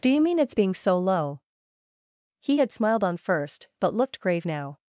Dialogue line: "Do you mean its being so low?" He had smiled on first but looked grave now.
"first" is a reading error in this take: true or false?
false